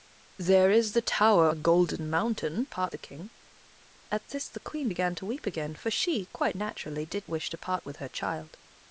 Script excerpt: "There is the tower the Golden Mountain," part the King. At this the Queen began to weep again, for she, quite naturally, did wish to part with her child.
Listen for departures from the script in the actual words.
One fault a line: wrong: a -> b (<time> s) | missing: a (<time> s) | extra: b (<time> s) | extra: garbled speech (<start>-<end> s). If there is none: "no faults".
no faults